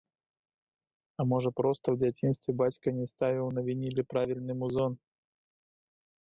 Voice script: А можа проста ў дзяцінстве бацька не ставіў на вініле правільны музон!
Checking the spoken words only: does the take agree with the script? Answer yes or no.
yes